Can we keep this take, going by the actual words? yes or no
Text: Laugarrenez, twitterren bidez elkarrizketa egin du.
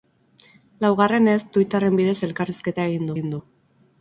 no